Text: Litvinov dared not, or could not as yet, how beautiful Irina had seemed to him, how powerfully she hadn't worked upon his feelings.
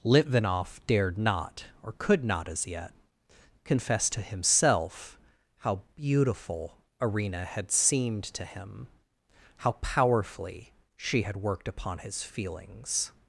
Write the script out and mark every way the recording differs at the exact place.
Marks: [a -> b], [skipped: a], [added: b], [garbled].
Litvinov dared not, or could not as yet, [added: confess to himself] how beautiful Irina had seemed to him, how powerfully she [hadn't -> had] worked upon his feelings.